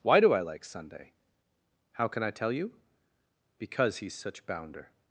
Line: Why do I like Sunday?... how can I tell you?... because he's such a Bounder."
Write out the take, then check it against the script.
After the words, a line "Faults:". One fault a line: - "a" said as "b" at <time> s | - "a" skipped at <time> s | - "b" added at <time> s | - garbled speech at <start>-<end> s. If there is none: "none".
Why do I like Sunday?... how can I tell you?... because he's such Bounder."
Faults:
- "a" skipped at 4.5 s